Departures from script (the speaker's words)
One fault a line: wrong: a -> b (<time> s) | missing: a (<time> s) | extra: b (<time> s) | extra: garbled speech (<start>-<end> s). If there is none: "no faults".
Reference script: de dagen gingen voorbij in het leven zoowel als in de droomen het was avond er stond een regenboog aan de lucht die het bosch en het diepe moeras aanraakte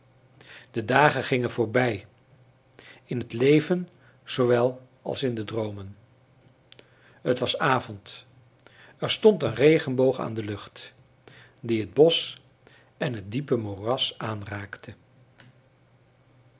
no faults